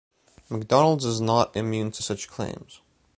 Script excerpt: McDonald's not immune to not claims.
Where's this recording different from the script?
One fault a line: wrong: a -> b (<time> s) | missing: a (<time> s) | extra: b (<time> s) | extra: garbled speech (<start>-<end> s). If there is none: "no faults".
extra: is (1.1 s)
wrong: not -> such (2.0 s)